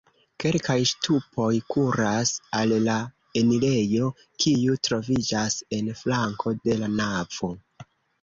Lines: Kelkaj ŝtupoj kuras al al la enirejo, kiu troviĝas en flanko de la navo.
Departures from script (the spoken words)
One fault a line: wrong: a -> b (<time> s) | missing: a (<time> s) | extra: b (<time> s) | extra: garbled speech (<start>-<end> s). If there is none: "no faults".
missing: al (2.7 s)